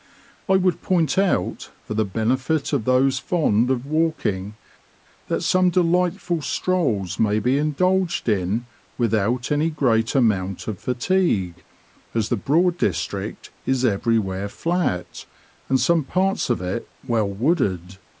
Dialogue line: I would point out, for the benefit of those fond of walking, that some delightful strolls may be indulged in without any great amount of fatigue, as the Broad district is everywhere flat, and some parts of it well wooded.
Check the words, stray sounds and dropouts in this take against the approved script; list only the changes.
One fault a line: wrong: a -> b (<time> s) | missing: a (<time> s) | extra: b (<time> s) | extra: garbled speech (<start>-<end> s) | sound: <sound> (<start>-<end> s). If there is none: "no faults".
no faults